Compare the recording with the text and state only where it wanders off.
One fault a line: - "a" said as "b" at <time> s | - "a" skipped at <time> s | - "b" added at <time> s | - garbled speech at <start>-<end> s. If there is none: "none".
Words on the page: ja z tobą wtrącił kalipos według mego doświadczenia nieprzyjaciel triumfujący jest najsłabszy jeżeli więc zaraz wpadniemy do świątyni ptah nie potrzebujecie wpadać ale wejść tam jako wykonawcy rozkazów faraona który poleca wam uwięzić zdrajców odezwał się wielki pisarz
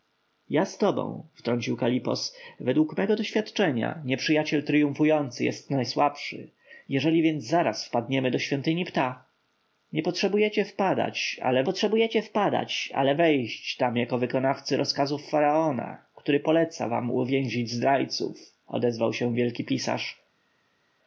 - "potrzebujecie wpadać ale" added at 11.6 s